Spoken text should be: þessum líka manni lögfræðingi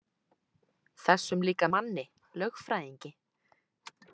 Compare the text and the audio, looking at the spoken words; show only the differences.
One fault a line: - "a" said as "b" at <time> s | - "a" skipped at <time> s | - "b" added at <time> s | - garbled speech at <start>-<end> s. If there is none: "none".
none